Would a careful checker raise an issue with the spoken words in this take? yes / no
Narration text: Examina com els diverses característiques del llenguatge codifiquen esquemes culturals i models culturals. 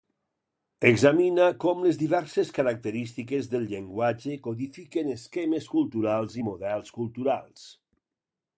yes